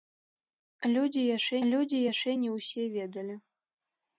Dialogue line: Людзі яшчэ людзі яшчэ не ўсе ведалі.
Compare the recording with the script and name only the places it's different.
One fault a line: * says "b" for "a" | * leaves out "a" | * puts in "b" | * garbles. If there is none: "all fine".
all fine